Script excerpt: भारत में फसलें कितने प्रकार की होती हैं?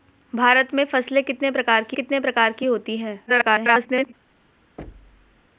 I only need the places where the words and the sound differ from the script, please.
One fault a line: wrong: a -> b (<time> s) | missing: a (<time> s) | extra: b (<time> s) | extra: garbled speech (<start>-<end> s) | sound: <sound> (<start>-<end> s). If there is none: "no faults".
extra: कितने प्रकार की (1.9 s)
extra: garbled speech (3.3-4.1 s)
sound: thud (4.8-5.4 s)